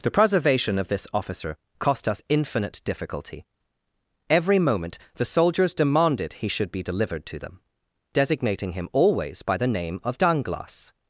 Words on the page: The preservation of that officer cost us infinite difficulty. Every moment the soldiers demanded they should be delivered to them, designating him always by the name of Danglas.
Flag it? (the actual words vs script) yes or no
yes